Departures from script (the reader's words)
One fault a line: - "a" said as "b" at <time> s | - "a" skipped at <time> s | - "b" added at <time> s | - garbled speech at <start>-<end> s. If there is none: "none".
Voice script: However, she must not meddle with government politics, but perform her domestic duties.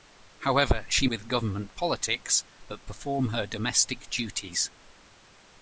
- "must not meddle" skipped at 1.1 s